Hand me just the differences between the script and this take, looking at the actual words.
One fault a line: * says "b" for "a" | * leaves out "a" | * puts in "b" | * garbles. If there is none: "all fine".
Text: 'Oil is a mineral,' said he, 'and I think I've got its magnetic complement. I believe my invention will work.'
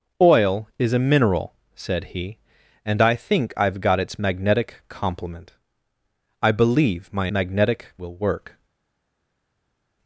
* says "magnetic" for "invention"